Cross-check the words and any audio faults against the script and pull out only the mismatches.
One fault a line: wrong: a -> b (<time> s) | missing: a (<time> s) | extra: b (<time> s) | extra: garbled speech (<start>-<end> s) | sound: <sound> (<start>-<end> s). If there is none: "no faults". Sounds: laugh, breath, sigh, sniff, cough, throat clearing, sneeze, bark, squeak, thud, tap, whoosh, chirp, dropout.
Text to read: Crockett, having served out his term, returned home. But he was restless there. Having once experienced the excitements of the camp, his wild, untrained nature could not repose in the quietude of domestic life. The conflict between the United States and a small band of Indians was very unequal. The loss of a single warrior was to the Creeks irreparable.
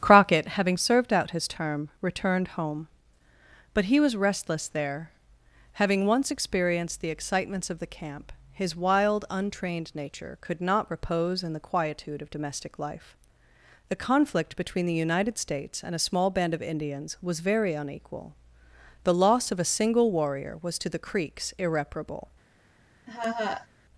sound: laugh (23.1-23.7 s)